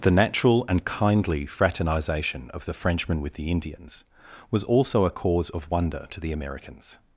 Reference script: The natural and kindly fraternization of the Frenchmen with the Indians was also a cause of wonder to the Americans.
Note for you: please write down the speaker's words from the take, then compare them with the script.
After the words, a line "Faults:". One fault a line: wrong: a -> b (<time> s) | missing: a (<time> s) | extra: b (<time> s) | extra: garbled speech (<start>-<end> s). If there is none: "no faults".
The natural and kindly fraternization of the Frenchmen with the Indians was also a cause of wonder to the Americans.
Faults:
no faults